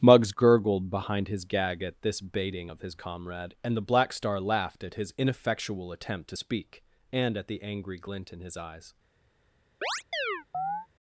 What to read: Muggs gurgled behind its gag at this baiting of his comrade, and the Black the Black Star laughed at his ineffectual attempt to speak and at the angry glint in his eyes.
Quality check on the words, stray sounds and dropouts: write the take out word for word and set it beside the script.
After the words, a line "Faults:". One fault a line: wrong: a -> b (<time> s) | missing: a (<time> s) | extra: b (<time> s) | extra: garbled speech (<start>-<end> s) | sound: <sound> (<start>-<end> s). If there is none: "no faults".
Muggs gurgled behind his gag at this baiting of his comrade, and the Black Star laughed at his ineffectual attempt to speak and at the angry glint in his eyes.
Faults:
wrong: its -> his (1.3 s)
missing: the Black (4.1 s)
sound: chirp (9.8-10.9 s)